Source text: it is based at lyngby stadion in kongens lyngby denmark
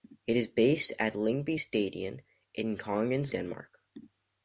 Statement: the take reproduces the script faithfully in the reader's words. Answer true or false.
false